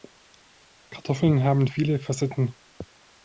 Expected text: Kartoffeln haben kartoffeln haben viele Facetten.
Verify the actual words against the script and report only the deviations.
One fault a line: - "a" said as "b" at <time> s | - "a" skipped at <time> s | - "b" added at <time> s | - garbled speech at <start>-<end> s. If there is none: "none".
- "kartoffeln haben" skipped at 1.7 s